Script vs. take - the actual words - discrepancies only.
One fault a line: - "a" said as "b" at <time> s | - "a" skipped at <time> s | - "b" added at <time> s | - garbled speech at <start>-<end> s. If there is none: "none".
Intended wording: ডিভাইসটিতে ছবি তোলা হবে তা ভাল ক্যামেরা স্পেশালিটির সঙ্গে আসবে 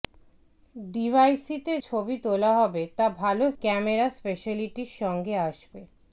none